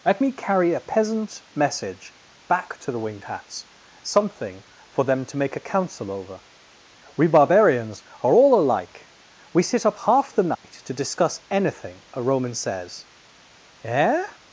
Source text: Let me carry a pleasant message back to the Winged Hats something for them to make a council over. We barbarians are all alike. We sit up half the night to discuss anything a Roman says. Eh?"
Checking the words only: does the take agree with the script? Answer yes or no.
no